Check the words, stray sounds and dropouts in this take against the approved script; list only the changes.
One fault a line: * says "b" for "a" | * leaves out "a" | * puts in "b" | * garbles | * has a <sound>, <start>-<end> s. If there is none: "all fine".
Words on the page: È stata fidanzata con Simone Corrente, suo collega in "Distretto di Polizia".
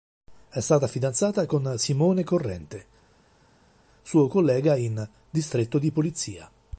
all fine